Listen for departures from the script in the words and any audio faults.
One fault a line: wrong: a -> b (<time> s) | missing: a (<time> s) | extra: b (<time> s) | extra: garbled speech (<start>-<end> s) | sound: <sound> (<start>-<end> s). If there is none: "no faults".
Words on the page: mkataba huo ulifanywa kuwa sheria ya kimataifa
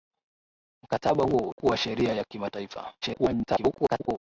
missing: ulifanywa (1.5 s)
extra: garbled speech (3.0-4.2 s)